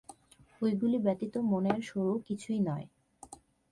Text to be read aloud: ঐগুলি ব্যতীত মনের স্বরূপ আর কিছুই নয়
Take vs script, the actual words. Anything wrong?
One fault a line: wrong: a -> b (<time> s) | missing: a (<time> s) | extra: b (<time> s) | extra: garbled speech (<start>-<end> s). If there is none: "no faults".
missing: আর (2.2 s)